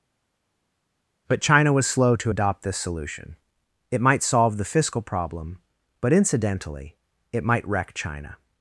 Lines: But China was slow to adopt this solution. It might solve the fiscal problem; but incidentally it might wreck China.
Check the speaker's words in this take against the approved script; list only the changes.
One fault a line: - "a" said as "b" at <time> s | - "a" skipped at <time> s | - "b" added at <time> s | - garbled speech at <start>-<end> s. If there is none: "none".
none